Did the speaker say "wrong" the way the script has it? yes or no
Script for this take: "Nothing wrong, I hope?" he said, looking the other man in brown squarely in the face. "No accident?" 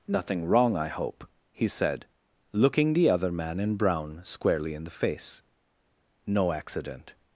yes